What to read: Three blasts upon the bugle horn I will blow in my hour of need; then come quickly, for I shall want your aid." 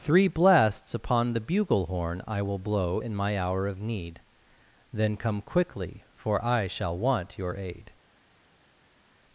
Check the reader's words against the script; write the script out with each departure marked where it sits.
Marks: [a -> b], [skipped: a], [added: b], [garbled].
Three blasts upon the bugle horn I will blow in my hour of need; then come quickly, for I shall want your aid."